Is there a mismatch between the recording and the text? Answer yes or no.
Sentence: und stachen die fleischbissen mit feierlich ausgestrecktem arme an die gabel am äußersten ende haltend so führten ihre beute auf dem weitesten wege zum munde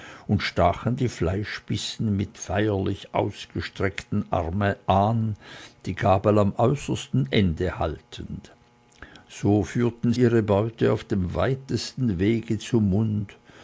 no